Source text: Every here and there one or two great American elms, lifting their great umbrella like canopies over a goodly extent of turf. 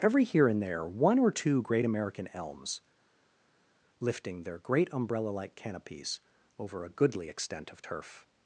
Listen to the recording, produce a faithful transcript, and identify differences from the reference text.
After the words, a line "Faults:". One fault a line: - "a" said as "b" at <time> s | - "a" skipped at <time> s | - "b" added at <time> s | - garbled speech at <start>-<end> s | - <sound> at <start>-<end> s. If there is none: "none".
Every here and there one or two great American elms, lifting their great umbrella like canopies over a goodly extent of turf.
Faults:
none